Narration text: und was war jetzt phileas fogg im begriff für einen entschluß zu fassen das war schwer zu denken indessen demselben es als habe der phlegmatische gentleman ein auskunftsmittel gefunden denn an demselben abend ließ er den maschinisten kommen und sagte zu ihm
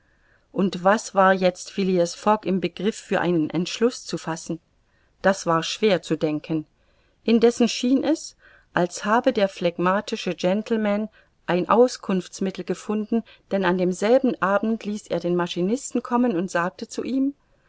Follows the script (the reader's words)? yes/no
no